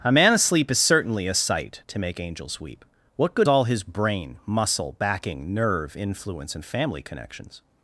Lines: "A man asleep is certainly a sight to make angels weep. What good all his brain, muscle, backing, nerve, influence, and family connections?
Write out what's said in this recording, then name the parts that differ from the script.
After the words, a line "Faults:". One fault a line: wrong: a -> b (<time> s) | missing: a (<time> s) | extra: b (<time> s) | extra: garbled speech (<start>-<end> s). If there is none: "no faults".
"A man asleep is certainly a sight to make angels weep. What good all his brain, muscle, backing, nerve, influence, and family connections?
Faults:
no faults